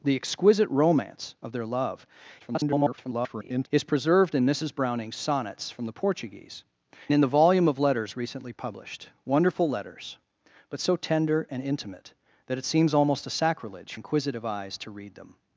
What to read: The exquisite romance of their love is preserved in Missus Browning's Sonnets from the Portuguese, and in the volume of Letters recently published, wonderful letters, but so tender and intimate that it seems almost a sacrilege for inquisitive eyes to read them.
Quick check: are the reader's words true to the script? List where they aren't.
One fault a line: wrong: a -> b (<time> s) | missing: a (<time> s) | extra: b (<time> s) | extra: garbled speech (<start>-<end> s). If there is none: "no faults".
extra: garbled speech (2.4-3.7 s)
missing: and (6.6 s)
missing: for (13.9 s)